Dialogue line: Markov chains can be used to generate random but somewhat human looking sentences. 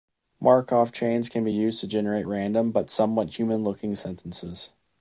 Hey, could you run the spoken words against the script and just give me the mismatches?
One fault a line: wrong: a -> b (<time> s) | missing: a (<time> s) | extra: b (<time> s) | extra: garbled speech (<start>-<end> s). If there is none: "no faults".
no faults